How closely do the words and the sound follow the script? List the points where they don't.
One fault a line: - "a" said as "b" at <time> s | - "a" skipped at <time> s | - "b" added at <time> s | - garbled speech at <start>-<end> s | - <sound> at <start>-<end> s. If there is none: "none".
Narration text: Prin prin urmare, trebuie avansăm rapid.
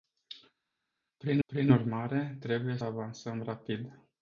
none